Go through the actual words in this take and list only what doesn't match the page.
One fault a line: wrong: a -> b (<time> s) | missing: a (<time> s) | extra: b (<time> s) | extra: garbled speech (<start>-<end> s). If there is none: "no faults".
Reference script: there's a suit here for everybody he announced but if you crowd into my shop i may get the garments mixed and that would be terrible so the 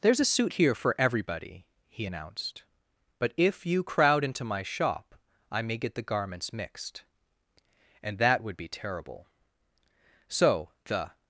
no faults